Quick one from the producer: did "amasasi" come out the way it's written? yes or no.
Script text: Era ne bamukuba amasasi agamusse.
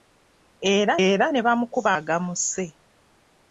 no